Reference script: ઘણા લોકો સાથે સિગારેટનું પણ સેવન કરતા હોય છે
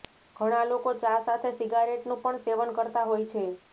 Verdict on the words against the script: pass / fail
fail